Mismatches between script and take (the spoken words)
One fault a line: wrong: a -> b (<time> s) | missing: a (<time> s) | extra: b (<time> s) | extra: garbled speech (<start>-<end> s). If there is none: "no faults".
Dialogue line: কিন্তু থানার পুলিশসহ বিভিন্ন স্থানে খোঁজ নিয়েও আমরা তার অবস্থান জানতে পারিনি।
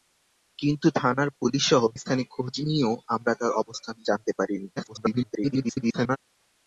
missing: বিভিন্ন (1.8 s)
extra: garbled speech (4.8-6.2 s)